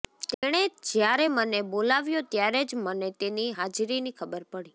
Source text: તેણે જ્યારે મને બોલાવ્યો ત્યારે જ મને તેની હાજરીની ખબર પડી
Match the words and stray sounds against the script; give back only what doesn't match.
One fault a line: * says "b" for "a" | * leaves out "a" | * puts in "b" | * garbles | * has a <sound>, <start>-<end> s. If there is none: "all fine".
* has a dropout, 0.3-0.4 s